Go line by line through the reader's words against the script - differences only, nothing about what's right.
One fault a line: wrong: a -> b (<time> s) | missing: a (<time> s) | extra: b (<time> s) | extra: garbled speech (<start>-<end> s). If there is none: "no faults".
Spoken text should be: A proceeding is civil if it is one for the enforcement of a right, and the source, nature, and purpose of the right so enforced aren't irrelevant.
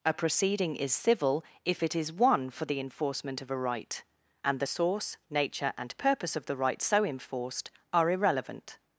wrong: aren't -> are (7.9 s)